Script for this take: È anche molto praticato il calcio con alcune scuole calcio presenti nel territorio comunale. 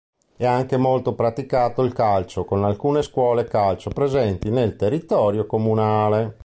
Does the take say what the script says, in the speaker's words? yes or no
yes